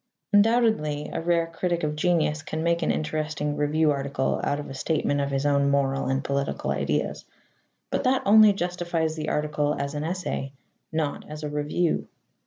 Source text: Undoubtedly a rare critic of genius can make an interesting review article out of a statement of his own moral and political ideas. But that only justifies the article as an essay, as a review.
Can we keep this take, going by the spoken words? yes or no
no